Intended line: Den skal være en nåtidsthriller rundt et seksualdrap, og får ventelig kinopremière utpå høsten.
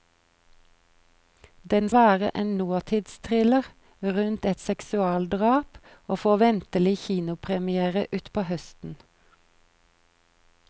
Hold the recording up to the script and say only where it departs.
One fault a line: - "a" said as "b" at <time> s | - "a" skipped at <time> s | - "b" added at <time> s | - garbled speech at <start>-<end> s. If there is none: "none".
- "skal" skipped at 1.9 s